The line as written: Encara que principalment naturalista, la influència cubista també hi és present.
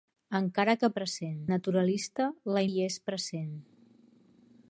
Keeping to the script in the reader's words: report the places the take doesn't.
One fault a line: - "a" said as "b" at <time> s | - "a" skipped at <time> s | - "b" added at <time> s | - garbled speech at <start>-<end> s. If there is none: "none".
- "principalment" said as "present" at 1.0 s
- "influència cubista també" skipped at 2.6 s